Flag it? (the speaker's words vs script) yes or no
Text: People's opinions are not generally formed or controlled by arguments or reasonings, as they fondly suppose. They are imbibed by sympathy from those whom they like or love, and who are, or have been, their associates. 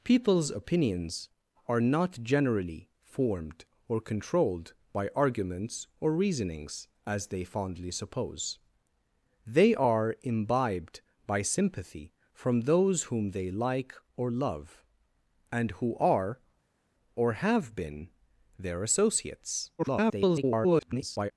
yes